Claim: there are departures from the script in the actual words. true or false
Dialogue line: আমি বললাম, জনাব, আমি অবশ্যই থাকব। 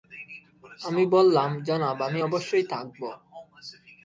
false